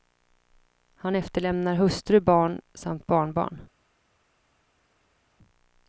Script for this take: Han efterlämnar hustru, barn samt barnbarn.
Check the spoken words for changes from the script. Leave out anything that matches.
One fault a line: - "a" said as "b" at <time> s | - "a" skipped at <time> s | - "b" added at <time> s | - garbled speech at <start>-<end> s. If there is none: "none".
none